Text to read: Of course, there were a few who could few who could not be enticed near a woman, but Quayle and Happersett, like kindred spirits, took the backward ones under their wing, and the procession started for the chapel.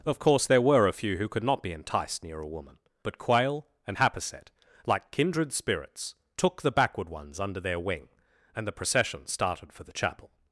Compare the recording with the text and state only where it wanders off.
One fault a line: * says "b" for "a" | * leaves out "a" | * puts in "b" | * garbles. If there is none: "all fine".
* leaves out "few who could"